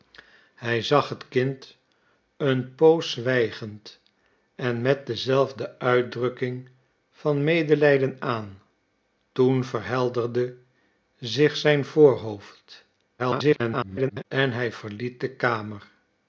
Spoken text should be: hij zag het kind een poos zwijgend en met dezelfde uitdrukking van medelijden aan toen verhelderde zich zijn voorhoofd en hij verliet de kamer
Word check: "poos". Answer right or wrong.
right